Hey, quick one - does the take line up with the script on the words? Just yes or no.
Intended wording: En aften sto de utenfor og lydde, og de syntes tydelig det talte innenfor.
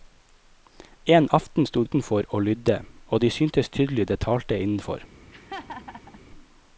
no